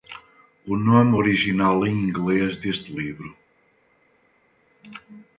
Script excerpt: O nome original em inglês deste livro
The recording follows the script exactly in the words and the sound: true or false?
true